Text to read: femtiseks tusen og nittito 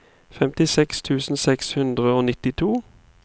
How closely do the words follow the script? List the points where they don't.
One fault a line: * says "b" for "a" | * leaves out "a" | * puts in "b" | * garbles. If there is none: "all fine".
* puts in "seks hundre"